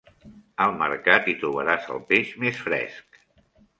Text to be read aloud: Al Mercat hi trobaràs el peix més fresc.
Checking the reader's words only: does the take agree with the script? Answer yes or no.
yes